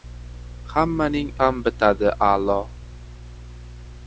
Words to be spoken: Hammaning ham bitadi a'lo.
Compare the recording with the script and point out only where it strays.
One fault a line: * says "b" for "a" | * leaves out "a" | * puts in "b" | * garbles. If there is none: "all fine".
all fine